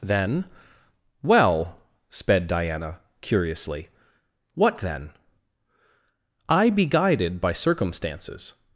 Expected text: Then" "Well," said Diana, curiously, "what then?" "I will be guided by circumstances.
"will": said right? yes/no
no